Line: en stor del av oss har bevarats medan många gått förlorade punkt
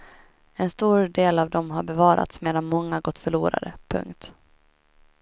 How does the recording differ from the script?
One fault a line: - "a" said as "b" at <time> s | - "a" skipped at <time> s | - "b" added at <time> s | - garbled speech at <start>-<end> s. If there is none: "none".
- "oss" said as "dem" at 1.5 s